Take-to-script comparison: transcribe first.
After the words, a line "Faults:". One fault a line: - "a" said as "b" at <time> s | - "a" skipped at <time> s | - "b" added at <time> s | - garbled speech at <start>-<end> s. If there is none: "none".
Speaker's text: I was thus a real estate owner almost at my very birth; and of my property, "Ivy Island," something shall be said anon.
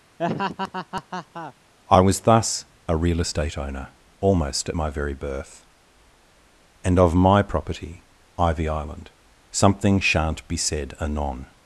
I was thus a real estate owner almost at my very birth; and of my property, "Ivy Island," something shan't be said anon.
Faults:
- "shall" said as "shan't" at 10.0 s